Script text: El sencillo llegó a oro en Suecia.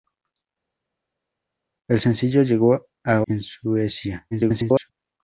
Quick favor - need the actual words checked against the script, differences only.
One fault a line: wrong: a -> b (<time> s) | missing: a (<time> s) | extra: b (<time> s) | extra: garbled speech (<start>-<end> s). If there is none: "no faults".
missing: oro (3.2 s)
extra: garbled speech (4.3-4.9 s)